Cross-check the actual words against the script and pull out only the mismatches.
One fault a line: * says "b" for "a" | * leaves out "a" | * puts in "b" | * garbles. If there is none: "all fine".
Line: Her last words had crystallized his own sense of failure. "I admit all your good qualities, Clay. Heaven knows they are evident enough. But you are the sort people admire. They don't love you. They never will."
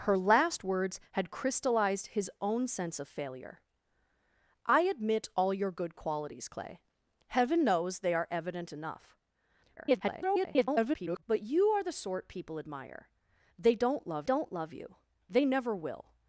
* garbles
* puts in "don't love"